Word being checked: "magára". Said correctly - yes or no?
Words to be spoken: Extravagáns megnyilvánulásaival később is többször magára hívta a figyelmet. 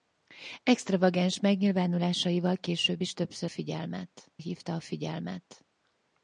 no